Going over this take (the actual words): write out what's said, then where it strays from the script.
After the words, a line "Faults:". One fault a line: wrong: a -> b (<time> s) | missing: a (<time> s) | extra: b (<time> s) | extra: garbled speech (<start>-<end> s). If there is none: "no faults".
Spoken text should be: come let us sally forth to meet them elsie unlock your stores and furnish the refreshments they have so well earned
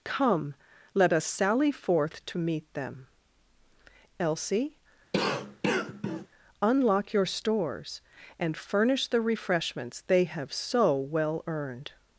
come let us sally forth to meet them elsie unlock your stores and furnish the refreshments they have so well earned
Faults:
no faults